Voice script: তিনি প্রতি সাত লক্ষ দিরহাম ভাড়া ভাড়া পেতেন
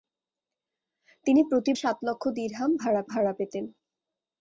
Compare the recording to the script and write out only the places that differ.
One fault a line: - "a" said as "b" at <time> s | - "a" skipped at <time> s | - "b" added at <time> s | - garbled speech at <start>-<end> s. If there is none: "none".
none